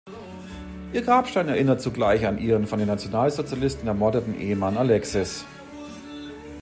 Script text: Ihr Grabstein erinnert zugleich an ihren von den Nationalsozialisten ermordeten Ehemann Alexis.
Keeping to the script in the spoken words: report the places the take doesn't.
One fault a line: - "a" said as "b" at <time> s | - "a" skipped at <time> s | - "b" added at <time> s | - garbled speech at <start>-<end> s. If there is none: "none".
none